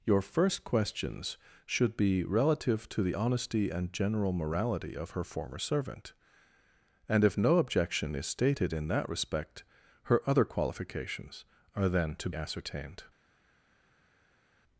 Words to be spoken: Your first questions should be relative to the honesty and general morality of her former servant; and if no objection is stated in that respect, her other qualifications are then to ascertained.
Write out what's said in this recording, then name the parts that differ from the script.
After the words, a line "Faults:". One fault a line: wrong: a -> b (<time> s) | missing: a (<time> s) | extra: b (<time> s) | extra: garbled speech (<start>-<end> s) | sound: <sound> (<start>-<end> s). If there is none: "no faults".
Your first questions should be relative to the honesty and general morality of her former servant; and if no objection is stated in that respect, her other qualifications are then to ascertained.
Faults:
no faults